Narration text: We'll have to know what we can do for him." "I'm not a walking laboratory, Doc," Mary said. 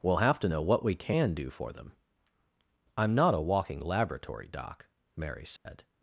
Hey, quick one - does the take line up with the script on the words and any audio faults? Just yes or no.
no